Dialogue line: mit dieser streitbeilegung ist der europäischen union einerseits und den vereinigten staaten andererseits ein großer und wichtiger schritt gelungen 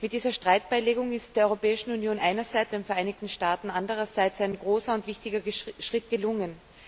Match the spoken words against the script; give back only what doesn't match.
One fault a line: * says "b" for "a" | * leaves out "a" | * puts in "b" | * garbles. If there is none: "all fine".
* leaves out "und"